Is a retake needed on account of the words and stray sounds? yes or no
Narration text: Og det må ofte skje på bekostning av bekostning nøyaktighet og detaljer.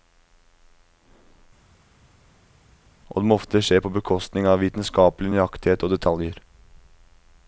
yes